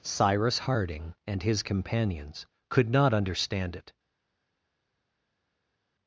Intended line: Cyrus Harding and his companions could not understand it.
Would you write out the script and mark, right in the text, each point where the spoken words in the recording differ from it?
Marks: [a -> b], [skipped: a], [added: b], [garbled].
Cyrus Harding and his companions could not understand it.